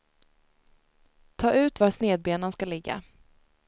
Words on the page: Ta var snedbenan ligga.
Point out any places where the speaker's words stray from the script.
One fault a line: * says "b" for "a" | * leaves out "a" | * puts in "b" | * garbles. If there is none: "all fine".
* puts in "ut"
* puts in "ska"